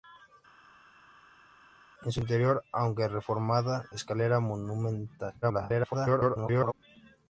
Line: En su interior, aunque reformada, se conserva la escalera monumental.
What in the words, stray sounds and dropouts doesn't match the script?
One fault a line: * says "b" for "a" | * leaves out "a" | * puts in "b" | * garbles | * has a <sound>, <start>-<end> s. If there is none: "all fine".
* leaves out "se conserva la"
* garbles